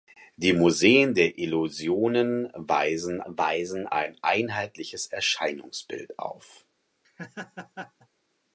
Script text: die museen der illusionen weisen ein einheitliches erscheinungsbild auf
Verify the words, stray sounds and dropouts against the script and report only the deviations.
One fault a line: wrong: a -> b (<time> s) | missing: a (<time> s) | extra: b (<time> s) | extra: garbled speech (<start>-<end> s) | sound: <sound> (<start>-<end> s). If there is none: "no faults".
extra: weisen (3.3 s)
sound: laugh (7.0-8.1 s)